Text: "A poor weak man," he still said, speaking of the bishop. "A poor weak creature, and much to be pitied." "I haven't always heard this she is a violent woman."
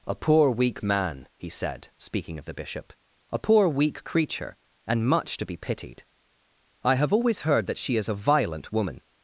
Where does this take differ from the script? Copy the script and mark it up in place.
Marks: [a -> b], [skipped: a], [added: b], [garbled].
"A poor weak man," he [skipped: still] said, speaking of the bishop. "A poor weak creature, and much to be pitied." "I [haven't -> have] always heard [this -> that] she is a violent woman."